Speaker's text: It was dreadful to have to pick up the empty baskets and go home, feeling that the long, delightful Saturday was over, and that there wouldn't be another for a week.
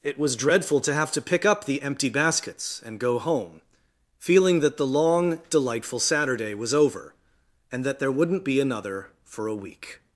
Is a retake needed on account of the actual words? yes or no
no